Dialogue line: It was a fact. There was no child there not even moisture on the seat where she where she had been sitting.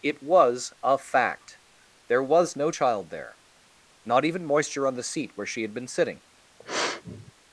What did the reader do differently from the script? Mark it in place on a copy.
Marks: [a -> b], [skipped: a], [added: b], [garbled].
It was a fact. There was no child there not even moisture on the seat where she [skipped: where she] had been sitting.